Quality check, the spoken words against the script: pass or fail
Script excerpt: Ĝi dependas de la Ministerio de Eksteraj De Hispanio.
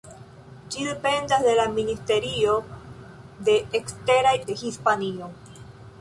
pass